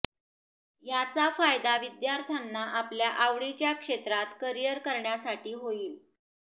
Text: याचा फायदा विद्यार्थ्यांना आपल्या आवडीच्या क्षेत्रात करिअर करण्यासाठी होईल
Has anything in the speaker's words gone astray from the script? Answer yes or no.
no